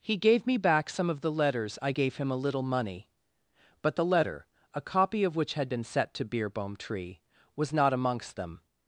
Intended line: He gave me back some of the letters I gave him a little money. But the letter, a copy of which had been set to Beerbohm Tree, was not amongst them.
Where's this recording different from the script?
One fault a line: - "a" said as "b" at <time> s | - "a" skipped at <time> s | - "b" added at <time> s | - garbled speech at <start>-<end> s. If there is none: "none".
none